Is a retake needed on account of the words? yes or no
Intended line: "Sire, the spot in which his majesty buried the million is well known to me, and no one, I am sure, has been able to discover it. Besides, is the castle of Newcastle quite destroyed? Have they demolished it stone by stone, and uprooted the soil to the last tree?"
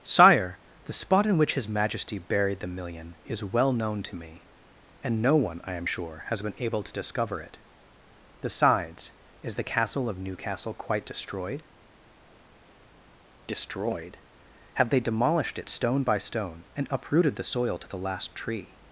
yes